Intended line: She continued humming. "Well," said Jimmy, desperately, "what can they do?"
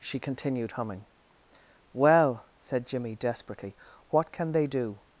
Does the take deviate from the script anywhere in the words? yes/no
no